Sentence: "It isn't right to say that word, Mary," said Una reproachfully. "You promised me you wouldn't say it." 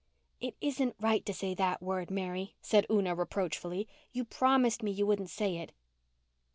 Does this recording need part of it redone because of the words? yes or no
no